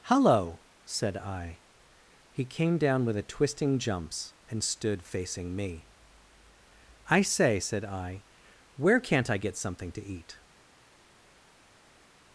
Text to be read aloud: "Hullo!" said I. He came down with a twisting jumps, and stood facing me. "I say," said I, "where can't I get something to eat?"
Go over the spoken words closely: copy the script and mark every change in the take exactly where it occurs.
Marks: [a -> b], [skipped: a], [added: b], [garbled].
"Hullo!" said I. He came down with a twisting jumps, and stood facing me. "I say," said I, "where can't I get something to eat?"